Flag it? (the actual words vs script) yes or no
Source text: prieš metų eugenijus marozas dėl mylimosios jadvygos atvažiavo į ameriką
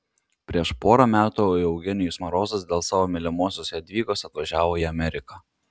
yes